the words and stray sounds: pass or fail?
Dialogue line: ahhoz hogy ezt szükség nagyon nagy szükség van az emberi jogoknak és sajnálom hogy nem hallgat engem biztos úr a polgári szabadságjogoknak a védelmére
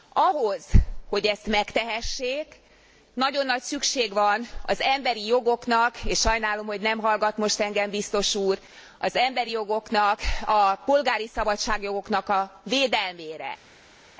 fail